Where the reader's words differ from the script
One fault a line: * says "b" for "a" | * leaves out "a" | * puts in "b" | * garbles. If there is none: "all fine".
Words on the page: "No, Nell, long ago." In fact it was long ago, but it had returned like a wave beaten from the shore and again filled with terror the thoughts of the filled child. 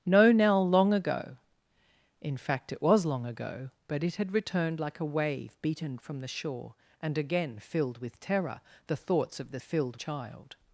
all fine